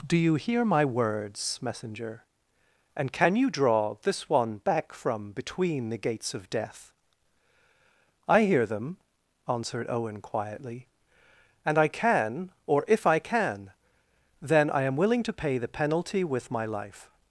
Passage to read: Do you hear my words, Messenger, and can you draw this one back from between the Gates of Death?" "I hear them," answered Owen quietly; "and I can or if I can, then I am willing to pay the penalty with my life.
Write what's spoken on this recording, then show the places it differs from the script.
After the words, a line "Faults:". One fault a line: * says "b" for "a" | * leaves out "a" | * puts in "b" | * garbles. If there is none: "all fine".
Do you hear my words, Messenger, and can you draw this one back from between the Gates of Death?" "I hear them," answered Owen quietly; "and I can or if I can, then I am willing to pay the penalty with my life.
Faults:
all fine